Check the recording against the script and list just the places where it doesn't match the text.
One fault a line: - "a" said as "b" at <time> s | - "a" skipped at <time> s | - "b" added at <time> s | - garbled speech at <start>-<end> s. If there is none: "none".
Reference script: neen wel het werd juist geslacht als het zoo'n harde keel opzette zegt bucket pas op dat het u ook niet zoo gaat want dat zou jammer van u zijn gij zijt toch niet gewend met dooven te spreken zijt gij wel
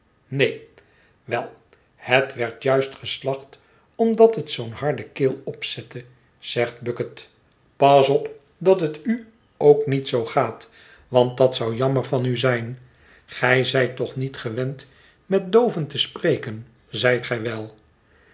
- "als" said as "omdat" at 4.0 s